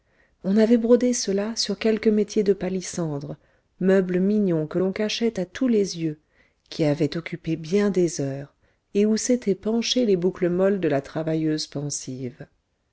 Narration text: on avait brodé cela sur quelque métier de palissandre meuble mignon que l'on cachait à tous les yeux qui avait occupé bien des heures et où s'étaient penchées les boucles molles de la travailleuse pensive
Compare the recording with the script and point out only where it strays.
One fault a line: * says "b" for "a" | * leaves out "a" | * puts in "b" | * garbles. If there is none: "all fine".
all fine